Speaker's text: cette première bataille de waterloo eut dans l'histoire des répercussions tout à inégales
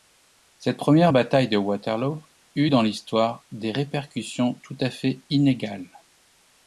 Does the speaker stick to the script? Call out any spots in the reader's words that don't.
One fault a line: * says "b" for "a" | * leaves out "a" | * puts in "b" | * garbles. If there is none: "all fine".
* puts in "fait"